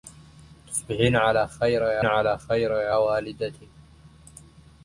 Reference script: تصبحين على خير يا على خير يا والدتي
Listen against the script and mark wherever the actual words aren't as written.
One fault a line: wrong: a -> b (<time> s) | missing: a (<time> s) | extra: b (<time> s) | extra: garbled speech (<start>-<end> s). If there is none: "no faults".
no faults